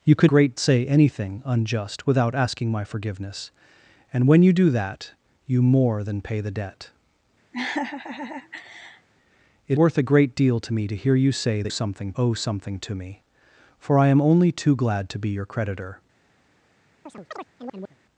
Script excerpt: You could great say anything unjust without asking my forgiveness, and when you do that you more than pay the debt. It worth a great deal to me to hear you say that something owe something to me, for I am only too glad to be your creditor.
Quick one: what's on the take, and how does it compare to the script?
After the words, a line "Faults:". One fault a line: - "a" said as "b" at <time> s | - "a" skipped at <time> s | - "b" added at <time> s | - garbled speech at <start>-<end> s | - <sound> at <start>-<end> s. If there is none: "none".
You could great say anything unjust without asking my forgiveness, and when you do that you more than pay the debt. It worth a great deal to me to hear you say that something owe something to me, for I am only too glad to be your creditor.
Faults:
- laugh at 7.5-9.1 s
- chirp at 17.1-18.0 s